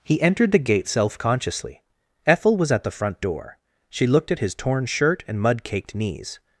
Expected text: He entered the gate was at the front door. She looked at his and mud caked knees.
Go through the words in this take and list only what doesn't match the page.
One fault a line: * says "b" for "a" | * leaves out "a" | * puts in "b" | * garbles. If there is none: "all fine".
* puts in "self consciously Ethel"
* puts in "torn shirt"